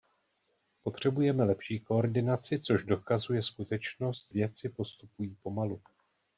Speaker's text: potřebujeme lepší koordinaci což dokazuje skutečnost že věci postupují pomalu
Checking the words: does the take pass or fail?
fail